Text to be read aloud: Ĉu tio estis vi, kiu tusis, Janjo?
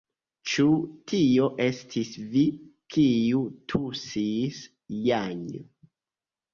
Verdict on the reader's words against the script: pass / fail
pass